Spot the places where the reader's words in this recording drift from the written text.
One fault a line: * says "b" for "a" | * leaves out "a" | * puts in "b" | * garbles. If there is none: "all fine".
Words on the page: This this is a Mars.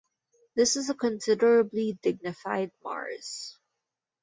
* leaves out "this"
* puts in "considerably dignified"